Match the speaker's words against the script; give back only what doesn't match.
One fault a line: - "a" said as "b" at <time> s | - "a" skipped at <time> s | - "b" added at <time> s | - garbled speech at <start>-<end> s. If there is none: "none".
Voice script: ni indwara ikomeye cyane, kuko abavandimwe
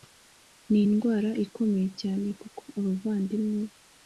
none